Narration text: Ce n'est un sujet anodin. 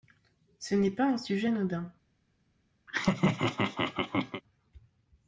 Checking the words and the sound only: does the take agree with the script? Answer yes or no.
no